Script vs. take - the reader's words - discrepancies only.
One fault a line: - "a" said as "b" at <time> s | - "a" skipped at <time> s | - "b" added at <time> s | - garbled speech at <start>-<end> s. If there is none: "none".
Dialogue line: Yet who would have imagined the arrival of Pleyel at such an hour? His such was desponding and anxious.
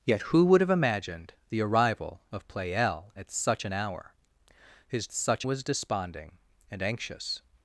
none